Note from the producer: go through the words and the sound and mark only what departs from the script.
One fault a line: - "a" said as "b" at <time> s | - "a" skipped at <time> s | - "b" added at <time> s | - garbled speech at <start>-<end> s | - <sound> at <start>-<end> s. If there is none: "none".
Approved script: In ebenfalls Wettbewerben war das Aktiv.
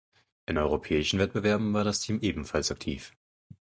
- "ebenfalls" said as "europäischen" at 0.6 s
- "Team ebenfalls" added at 2.0 s